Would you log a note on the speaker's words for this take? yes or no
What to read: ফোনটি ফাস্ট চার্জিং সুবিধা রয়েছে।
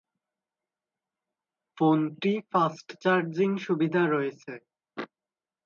no